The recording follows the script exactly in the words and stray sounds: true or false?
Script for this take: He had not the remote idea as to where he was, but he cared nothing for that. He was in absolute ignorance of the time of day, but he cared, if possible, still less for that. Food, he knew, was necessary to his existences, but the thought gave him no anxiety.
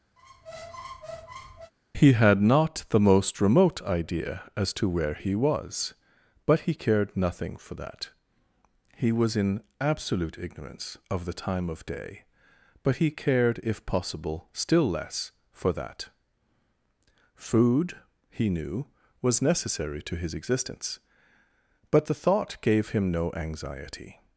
false